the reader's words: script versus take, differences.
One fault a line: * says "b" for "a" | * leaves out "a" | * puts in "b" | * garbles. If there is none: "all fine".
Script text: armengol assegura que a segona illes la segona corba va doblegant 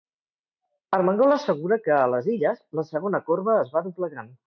* says "les" for "segona"
* puts in "es"